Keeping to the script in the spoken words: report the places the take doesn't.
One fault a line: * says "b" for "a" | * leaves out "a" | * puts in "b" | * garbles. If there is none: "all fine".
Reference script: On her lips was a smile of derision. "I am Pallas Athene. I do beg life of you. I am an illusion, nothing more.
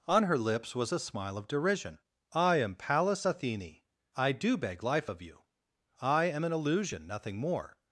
all fine